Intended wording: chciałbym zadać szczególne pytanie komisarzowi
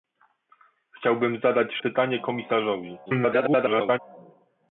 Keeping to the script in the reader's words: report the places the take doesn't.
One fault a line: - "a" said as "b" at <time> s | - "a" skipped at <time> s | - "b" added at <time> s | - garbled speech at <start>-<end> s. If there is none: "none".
- "szczególne" skipped at 1.7 s
- garbled speech at 3.1-4.0 s